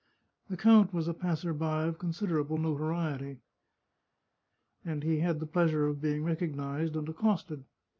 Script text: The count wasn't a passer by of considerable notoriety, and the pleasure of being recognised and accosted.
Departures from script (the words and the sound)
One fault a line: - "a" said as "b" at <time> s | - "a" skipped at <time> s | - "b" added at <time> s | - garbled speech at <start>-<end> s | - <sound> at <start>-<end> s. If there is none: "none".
- "wasn't" said as "was" at 0.9 s
- "he had" added at 5.0 s